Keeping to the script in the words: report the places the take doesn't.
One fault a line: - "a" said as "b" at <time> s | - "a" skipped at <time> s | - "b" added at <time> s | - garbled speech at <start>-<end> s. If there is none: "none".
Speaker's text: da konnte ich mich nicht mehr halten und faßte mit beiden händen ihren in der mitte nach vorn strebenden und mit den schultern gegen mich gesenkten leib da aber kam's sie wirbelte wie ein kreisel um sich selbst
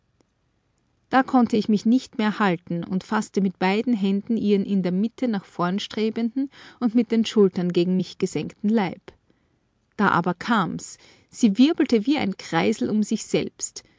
none